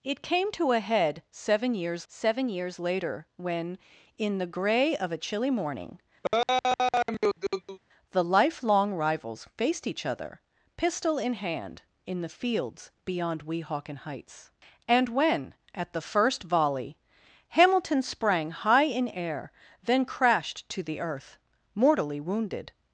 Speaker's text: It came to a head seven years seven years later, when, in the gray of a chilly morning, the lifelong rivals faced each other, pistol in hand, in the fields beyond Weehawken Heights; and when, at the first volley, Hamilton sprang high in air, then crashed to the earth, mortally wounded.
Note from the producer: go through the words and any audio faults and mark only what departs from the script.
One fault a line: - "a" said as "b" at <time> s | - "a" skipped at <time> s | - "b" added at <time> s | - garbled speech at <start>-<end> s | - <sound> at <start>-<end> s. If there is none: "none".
- laugh at 6.2-7.8 s